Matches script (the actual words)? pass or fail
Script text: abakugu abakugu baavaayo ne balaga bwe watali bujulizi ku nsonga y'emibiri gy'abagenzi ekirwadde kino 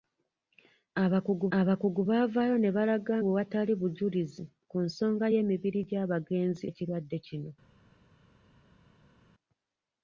pass